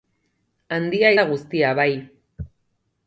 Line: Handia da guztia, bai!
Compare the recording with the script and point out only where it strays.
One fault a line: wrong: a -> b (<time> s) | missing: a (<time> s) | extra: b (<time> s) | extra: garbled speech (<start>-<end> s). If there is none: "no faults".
no faults